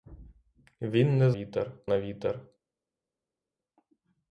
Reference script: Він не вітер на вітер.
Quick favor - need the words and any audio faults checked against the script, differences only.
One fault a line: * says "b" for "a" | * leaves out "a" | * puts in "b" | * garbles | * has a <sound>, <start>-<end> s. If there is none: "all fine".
all fine